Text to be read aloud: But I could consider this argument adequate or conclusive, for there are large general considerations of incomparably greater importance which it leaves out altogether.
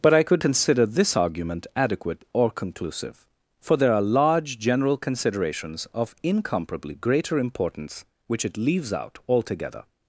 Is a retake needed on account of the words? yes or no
no